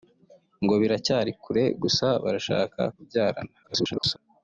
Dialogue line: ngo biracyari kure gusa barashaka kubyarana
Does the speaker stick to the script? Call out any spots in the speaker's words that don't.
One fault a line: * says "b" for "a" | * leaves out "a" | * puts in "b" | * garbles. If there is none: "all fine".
* garbles